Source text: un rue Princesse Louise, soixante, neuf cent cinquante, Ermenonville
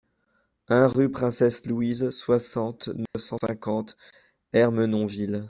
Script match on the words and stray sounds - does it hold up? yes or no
no